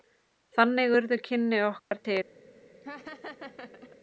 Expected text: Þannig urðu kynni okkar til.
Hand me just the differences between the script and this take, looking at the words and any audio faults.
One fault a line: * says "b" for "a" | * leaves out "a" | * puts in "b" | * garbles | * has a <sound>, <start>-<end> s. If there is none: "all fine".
* has a dropout, 1.8-1.9 s
* has a laugh, 2.8-4.0 s